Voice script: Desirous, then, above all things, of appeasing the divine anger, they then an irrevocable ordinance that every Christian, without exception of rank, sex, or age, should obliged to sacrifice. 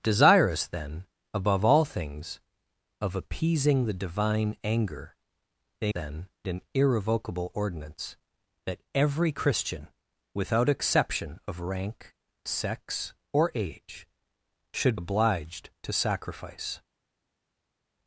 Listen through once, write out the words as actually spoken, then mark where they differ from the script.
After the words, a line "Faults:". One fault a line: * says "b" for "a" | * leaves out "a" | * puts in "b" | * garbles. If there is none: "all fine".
Desirous, then, above all things, of appeasing the divine anger, they then an irrevocable ordinance that every Christian, without exception of rank, sex, or age, should obliged to sacrifice.
Faults:
all fine